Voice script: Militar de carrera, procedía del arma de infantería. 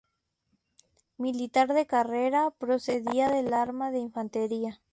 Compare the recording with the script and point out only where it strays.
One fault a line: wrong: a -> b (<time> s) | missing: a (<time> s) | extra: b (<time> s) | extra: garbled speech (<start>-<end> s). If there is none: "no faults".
no faults